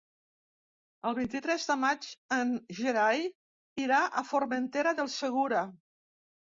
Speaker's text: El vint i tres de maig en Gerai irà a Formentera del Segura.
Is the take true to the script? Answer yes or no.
yes